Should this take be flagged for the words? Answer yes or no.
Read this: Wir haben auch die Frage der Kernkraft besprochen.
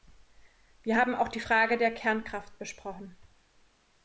no